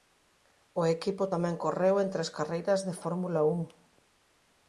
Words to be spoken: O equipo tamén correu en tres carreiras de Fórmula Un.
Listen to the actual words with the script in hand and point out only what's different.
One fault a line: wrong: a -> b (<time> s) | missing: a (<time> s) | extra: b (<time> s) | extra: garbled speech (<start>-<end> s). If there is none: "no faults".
no faults